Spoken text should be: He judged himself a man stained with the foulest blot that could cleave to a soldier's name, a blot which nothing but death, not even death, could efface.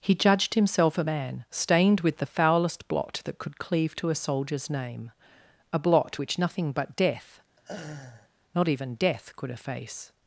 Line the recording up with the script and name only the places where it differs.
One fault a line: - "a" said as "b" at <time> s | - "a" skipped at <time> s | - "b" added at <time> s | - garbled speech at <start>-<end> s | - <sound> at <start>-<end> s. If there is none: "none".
- laugh at 7.6-8.3 s